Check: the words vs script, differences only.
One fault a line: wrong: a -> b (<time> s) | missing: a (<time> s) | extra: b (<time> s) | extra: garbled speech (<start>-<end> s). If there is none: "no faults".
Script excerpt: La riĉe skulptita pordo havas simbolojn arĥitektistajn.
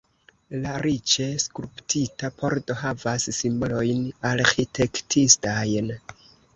no faults